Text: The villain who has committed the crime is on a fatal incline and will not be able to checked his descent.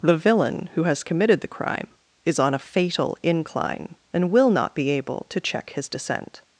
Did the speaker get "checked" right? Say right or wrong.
wrong